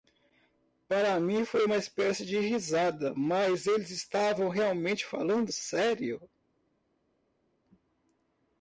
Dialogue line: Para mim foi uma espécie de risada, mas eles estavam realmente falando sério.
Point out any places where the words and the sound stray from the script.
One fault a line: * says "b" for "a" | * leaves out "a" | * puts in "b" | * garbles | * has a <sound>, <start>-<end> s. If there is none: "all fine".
all fine